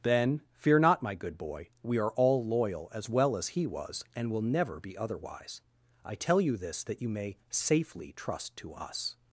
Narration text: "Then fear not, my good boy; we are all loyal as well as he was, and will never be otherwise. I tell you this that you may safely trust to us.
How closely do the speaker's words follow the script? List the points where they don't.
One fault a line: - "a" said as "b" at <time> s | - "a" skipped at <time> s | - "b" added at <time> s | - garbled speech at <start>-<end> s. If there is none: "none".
none